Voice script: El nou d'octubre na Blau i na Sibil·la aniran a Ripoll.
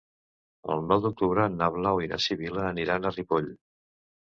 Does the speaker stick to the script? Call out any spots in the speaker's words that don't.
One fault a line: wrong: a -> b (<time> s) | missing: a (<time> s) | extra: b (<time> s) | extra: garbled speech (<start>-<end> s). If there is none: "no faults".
no faults